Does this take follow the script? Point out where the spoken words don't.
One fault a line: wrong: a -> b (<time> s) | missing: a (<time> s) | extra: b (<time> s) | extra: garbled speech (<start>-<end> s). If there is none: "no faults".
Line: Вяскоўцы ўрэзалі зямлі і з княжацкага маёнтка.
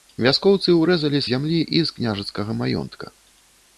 no faults